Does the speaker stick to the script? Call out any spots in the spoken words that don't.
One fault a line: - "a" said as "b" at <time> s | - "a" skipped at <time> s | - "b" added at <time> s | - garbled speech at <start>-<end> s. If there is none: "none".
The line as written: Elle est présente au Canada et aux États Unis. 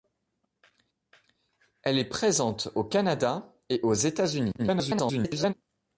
- garbled speech at 4.6-5.5 s